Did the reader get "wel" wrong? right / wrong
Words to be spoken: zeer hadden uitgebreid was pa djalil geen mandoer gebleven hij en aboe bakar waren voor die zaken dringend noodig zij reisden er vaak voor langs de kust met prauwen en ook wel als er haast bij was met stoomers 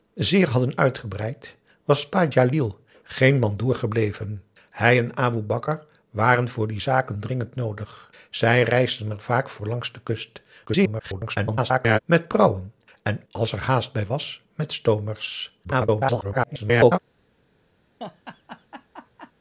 wrong